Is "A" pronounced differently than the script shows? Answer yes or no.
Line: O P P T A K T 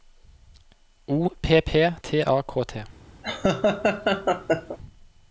no